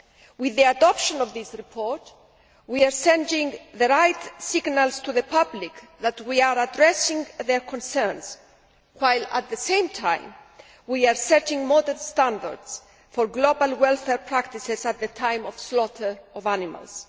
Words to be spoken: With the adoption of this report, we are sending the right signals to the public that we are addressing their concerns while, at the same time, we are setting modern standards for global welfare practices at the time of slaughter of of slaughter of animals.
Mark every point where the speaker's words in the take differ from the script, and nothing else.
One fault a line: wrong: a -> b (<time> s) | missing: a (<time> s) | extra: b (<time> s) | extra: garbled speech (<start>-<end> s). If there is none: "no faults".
missing: of slaughter of (16.5 s)